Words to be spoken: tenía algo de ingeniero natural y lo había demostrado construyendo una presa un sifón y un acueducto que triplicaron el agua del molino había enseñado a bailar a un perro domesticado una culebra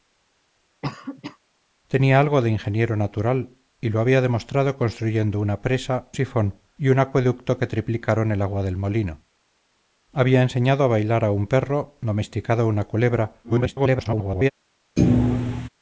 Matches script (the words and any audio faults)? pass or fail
fail